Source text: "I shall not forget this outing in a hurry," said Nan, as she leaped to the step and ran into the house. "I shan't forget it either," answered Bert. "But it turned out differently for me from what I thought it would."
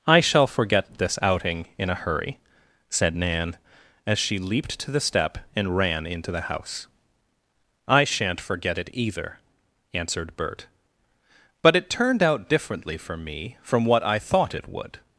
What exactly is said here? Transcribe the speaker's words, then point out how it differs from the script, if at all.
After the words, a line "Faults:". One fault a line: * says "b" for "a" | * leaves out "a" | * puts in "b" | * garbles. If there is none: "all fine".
"I shall forget this outing in a hurry," said Nan, as she leaped to the step and ran into the house. "I shan't forget it either," answered Bert. "But it turned out differently for me from what I thought it would."
Faults:
* leaves out "not"